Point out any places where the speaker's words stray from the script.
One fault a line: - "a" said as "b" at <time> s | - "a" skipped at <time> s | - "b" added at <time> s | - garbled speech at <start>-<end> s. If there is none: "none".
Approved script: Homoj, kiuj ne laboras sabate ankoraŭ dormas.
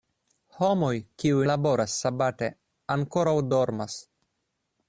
- "ne" skipped at 1.4 s